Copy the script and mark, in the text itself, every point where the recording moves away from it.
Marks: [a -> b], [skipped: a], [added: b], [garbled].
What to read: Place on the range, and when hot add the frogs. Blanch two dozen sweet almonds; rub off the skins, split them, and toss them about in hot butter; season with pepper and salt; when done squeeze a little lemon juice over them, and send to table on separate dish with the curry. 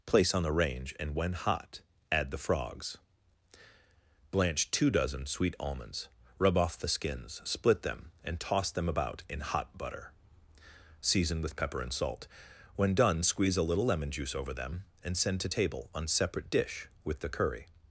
Place on the range, and when hot add the frogs. Blanch two dozen sweet almonds; rub off the skins, split them, and toss them about in hot butter; season with pepper and salt; when done squeeze a little lemon juice over them, and send to table on separate dish with the curry.